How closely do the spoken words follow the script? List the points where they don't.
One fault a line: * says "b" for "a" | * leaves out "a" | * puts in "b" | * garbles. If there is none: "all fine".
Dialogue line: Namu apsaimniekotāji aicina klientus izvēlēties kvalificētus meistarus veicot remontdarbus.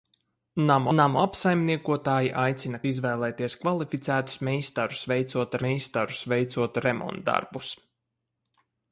* puts in "namu"
* leaves out "klientus"
* puts in "meistarus veicot"